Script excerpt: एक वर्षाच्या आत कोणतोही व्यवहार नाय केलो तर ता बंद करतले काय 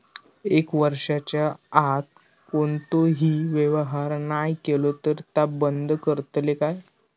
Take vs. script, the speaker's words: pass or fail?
pass